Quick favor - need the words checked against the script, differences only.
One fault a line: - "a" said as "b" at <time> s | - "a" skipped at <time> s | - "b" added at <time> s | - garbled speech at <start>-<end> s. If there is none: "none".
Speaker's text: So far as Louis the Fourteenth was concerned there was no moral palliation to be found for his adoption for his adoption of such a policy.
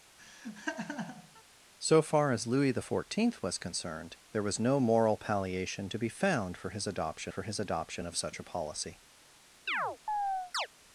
none